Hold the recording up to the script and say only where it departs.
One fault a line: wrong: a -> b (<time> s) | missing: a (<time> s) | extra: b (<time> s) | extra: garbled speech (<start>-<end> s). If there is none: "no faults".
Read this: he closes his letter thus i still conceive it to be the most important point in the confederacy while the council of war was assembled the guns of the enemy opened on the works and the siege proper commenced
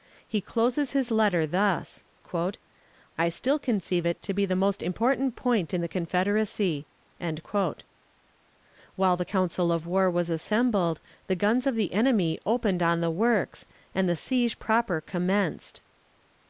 no faults